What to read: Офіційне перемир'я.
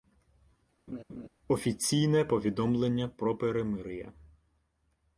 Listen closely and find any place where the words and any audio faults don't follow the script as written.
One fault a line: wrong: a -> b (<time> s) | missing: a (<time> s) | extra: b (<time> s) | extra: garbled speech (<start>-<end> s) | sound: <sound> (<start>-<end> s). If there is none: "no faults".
sound: laugh (0.9-1.3 s)
extra: повідомлення про (2.2 s)